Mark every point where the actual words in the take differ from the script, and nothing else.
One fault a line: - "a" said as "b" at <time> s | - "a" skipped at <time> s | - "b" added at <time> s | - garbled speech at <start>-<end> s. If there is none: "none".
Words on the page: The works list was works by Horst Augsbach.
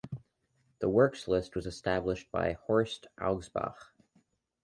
- "works" said as "established" at 1.6 s